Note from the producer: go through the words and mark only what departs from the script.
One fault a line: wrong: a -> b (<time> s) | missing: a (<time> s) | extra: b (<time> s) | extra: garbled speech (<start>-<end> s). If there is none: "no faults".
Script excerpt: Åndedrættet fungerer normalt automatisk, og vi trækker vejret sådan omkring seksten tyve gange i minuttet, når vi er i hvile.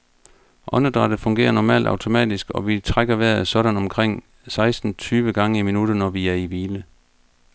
no faults